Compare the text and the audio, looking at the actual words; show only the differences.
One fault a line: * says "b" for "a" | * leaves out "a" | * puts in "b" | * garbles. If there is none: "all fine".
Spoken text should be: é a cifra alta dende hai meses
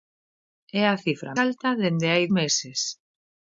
all fine